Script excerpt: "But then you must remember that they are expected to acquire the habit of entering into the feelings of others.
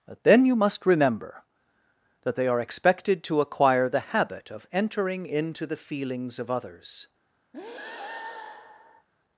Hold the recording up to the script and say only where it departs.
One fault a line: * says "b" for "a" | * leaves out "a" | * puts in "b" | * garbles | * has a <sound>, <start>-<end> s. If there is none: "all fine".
* has a breath, 7.5-9.1 s